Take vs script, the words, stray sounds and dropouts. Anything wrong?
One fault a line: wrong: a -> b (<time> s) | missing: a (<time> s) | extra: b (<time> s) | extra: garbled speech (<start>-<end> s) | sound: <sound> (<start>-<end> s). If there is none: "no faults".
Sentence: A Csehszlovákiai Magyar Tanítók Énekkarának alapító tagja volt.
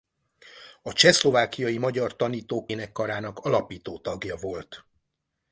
no faults